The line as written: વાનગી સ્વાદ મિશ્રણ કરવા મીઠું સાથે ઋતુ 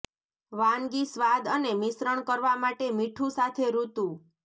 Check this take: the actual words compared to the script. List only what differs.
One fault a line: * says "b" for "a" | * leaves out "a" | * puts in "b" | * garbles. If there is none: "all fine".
* puts in "અને"
* puts in "માટે"